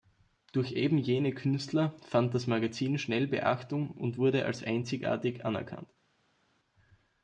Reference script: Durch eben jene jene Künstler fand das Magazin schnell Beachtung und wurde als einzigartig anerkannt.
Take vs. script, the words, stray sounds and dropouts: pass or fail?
fail